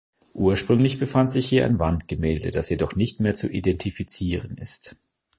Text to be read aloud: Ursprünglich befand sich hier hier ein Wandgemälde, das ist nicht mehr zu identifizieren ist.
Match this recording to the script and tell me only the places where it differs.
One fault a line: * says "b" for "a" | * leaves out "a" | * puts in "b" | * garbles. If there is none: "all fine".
* leaves out "hier"
* says "jedoch" for "ist"